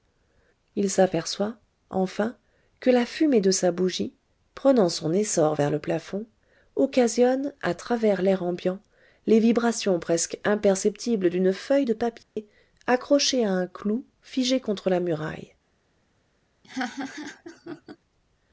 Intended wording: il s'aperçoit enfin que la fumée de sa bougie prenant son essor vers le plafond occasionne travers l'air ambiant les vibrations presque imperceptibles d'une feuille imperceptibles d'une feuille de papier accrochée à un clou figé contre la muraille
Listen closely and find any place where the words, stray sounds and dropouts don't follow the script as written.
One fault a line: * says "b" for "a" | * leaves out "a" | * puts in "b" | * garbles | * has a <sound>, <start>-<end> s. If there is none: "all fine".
* puts in "à"
* leaves out "imperceptibles d'une feuille"
* has a dropout, 12.2-12.4 s
* has a laugh, 16.6-18.0 s